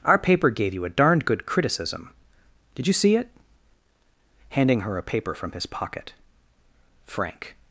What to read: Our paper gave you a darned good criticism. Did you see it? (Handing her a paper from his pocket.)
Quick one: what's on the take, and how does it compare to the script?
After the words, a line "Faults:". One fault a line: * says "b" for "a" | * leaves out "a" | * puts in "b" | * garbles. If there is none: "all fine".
Our paper gave you a darned good criticism. Did you see it? (Handing her a paper from his pocket.) FRANK
Faults:
* puts in "FRANK"